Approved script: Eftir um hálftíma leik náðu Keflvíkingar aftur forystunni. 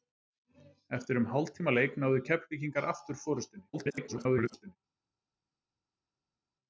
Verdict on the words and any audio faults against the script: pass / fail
fail